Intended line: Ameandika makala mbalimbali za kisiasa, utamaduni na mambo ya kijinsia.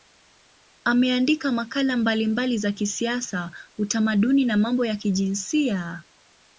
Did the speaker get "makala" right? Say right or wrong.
right